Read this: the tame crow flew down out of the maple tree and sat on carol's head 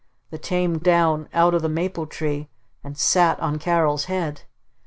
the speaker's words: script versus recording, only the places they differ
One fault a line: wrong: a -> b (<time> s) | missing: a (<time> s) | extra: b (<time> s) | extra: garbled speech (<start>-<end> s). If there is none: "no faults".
missing: crow flew (0.8 s)